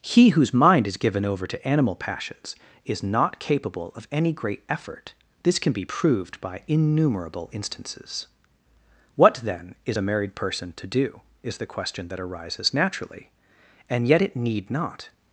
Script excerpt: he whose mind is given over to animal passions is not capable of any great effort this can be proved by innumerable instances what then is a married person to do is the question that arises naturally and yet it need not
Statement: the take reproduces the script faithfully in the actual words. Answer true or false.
true